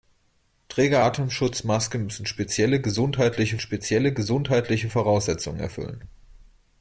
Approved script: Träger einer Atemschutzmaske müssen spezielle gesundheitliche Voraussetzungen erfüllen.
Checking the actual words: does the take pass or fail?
fail